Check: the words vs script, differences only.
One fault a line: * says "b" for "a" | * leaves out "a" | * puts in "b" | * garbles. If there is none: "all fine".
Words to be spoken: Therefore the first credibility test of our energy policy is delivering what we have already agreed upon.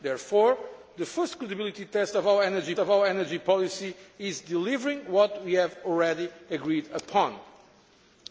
* puts in "of our energy"